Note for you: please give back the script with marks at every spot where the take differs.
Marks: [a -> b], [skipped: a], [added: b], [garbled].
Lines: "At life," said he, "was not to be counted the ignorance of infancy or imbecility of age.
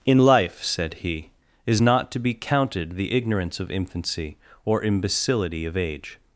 ["At -> In] life," said he, ["was -> is] not to be counted the ignorance of infancy or imbecility of age.